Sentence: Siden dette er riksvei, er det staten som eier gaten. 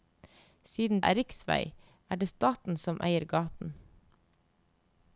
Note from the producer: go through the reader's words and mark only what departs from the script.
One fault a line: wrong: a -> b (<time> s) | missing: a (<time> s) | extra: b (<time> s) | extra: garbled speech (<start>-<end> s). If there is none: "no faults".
missing: dette (1.0 s)